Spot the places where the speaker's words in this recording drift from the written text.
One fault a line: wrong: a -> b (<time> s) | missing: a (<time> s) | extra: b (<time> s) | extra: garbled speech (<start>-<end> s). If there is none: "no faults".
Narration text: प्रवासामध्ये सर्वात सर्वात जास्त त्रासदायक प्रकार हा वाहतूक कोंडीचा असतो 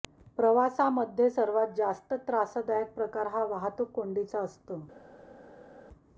missing: सर्वात (1.7 s)